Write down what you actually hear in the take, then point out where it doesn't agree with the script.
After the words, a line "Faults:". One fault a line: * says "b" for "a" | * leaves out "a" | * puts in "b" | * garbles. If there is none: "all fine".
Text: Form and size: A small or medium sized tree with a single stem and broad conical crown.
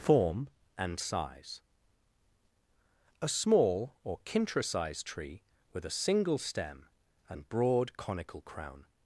Form and size: A small or kintra sized tree with a single stem and broad conical crown.
Faults:
* says "kintra" for "medium"